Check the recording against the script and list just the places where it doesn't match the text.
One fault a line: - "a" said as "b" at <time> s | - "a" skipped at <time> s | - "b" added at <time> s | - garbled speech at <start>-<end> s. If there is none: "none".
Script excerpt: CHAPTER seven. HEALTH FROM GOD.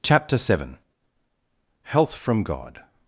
none